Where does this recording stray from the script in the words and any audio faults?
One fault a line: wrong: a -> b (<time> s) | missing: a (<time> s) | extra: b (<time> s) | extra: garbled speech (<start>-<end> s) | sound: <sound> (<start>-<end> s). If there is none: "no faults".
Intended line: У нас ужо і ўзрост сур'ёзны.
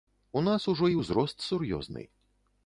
no faults